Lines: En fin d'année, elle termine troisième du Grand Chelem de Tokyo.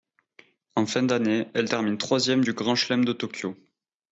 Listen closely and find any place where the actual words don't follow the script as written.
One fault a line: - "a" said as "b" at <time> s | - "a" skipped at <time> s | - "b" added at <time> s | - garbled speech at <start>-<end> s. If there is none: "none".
none